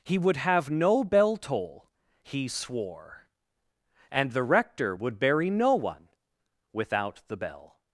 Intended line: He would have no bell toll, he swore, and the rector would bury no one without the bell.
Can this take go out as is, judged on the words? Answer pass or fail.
pass